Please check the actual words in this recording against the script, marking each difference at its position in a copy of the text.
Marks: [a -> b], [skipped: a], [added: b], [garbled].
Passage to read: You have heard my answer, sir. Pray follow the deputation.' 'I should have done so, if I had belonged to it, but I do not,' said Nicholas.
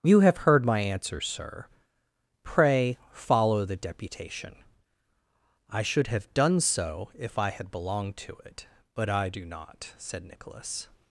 You have heard my answer, sir. Pray follow the deputation.' 'I should have done so, if I had belonged to it, but I do not,' said Nicholas.